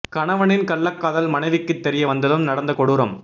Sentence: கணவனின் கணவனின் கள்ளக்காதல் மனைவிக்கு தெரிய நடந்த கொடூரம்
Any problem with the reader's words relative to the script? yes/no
yes